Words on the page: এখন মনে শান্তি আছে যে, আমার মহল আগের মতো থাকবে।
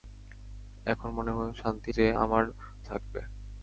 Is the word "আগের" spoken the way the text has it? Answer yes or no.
no